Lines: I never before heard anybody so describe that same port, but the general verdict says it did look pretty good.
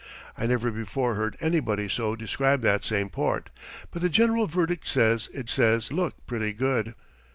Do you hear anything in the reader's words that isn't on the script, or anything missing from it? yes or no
yes